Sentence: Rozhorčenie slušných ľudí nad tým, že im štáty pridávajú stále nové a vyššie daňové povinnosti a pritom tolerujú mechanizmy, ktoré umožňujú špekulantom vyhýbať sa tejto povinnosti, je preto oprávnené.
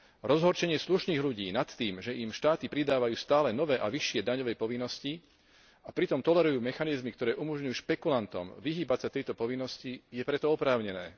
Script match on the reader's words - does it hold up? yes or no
yes